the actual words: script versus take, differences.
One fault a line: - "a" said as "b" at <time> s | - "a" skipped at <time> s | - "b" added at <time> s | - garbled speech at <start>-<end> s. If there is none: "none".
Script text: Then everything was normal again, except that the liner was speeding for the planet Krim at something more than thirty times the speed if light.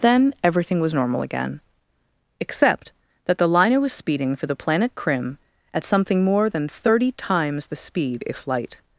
none